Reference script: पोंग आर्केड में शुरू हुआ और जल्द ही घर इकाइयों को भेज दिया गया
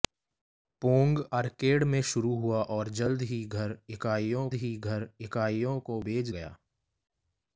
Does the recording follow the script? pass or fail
fail